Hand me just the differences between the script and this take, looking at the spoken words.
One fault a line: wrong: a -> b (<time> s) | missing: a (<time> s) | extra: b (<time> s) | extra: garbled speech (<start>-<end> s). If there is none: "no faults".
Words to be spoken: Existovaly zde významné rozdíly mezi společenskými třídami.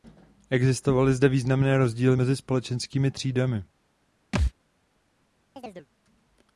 no faults